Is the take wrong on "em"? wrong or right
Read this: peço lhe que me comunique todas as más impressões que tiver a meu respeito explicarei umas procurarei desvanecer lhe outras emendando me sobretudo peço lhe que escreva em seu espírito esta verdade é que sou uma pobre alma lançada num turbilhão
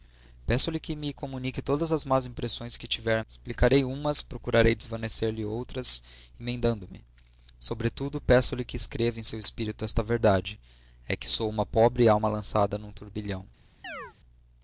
right